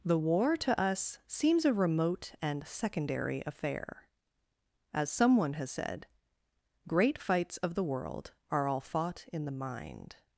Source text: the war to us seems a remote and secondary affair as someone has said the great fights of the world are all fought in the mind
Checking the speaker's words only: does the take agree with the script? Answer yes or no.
no